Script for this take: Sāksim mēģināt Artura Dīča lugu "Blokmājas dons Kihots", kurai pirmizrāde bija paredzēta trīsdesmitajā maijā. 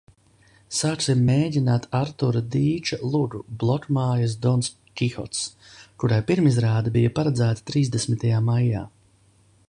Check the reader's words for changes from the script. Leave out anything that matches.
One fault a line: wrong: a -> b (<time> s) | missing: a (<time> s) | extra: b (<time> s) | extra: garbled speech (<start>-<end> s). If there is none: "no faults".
no faults